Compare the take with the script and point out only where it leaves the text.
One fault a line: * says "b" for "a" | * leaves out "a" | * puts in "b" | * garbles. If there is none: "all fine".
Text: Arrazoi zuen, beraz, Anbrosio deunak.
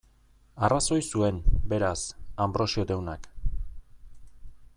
all fine